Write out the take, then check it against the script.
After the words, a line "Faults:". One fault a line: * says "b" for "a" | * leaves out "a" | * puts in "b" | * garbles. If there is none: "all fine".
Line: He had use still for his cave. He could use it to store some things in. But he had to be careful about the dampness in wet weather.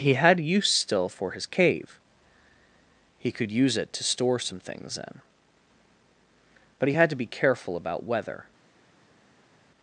He had use still for his cave. He could use it to store some things in. But he had to be careful about weather.
Faults:
* leaves out "the dampness in wet"